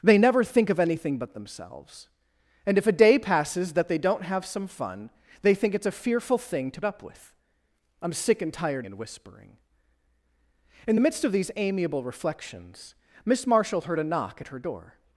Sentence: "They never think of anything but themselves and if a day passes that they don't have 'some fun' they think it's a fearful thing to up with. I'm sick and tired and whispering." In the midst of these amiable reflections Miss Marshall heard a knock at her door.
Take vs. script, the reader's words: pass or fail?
pass